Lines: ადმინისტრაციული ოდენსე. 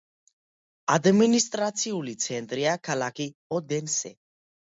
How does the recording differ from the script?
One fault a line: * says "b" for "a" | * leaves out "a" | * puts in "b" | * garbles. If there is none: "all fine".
* puts in "ცენტრია ქალაქი"